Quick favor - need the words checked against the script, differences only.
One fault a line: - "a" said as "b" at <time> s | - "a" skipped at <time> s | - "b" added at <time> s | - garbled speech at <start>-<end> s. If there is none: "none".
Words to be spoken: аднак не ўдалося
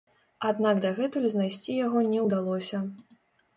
- "дагэтуль знайсці яго" added at 0.9 s